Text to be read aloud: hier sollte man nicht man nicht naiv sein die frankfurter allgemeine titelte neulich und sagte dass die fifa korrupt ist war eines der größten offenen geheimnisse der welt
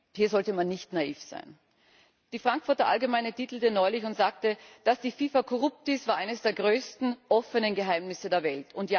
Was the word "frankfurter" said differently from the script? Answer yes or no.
no